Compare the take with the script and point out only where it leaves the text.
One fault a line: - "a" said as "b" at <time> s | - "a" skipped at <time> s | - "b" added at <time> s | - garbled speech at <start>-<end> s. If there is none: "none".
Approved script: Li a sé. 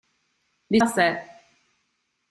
none